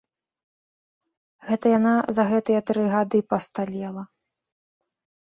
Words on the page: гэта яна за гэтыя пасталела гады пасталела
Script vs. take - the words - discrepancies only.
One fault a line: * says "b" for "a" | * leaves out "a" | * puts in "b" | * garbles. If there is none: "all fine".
* says "тры" for "пасталела"